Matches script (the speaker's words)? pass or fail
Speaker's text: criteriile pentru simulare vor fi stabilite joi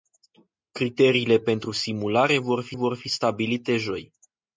fail